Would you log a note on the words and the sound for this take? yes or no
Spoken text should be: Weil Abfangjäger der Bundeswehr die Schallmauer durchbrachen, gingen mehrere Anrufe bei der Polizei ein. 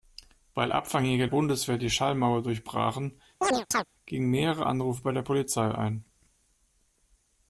yes